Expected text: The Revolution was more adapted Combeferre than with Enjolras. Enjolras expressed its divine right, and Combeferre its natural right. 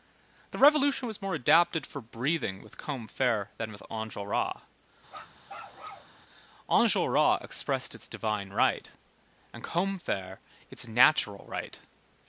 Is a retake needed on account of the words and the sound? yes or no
yes